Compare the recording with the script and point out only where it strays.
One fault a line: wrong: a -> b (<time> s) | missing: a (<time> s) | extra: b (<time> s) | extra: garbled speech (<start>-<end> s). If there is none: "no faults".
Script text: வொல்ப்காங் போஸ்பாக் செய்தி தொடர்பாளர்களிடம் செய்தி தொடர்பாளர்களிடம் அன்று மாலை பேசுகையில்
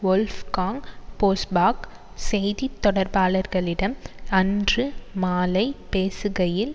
missing: செய்தி தொடர்பாளர்களிடம் (4.0 s)